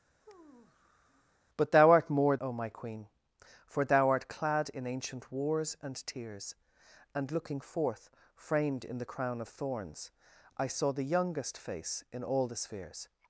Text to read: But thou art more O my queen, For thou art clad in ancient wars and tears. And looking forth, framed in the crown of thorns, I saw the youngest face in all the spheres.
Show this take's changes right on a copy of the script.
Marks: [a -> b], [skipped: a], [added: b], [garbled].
But thou art more O my queen, For thou art clad in ancient wars and tears. And looking forth, framed in the crown of thorns, I saw the youngest face in all the spheres.